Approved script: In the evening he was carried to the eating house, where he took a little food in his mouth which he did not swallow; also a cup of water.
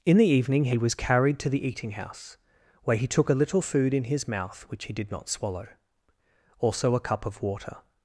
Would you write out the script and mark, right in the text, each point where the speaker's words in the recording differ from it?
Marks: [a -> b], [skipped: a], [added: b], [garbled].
In the evening he was carried to the eating house, where he took a little food in his mouth which he did not swallow; also a cup of water.